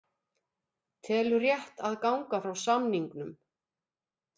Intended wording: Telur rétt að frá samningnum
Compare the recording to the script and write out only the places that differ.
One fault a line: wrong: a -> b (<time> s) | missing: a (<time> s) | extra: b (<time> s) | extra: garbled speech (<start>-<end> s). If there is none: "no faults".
extra: ganga (2.1 s)